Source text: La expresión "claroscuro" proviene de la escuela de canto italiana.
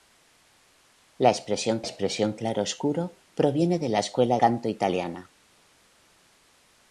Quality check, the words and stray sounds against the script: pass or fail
fail